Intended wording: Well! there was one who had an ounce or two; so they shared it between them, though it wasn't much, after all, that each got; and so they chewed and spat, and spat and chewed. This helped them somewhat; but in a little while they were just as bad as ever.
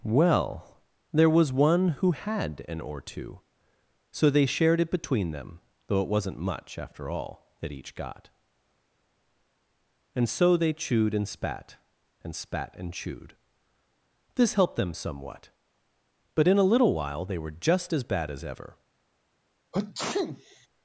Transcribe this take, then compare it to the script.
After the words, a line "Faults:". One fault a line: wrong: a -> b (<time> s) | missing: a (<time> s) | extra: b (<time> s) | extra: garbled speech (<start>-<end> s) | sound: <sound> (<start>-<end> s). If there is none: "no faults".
Well! there was one who had an or two; so they shared it between them, though it wasn't much, after all, that each got; and so they chewed and spat, and spat and chewed. This helped them somewhat; but in a little while they were just as bad as ever.
Faults:
missing: ounce (2.8 s)
sound: sneeze (19.7-20.7 s)